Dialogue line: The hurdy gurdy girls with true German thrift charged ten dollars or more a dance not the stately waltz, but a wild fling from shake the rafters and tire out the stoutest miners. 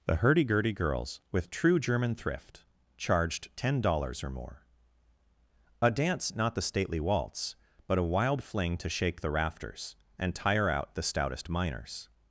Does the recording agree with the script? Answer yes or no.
no